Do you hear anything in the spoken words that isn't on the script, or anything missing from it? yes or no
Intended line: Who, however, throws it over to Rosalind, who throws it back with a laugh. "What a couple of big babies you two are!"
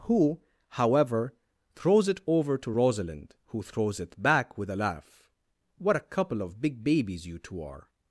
no